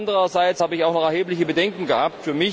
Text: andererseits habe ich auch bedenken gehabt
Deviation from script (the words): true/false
true